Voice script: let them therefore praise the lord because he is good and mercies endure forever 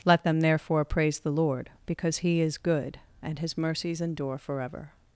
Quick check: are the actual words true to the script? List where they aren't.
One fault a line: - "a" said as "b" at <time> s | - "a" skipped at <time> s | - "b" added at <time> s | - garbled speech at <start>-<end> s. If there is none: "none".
- "his" added at 3.4 s